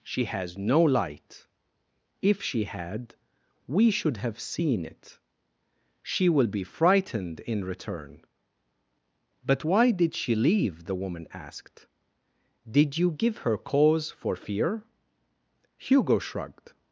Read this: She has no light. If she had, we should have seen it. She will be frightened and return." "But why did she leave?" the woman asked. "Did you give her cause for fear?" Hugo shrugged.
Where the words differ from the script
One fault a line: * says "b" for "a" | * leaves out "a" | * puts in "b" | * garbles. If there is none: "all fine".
* says "in" for "and"